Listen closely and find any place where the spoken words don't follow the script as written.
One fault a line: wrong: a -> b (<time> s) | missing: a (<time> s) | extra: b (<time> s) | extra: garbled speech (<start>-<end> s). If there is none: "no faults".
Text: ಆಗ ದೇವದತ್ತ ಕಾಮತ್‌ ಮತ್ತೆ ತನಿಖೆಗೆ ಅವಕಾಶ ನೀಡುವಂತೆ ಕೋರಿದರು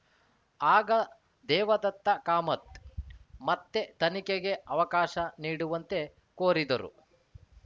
no faults